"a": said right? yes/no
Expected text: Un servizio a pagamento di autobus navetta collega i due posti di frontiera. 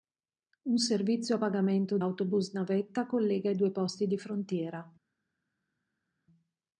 yes